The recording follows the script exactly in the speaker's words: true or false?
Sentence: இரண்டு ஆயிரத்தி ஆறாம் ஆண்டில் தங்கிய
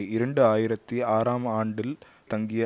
true